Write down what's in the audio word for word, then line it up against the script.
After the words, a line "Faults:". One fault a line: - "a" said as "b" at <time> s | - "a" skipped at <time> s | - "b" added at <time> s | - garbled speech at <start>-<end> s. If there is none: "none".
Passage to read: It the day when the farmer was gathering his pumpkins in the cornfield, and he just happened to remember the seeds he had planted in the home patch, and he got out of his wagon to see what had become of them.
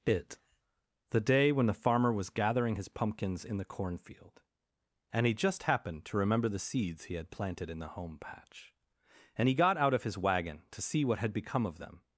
It the day when the farmer was gathering his pumpkins in the cornfield, and he just happened to remember the seeds he had planted in the home patch, and he got out of his wagon to see what had become of them.
Faults:
none